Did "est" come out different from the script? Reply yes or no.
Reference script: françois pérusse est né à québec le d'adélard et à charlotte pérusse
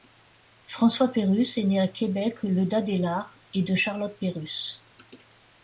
no